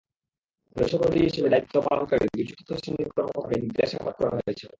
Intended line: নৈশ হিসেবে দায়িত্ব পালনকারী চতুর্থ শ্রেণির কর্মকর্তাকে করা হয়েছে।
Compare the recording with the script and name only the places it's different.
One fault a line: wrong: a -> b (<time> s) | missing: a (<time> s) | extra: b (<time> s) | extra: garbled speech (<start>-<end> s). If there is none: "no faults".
extra: প্রহরী (0.9 s)
extra: দুই (2.3 s)
extra: জিজ্ঞাসাবাদ (3.6 s)